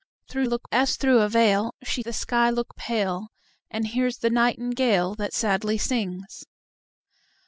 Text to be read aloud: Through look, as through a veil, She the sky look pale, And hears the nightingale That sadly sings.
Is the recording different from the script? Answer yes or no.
no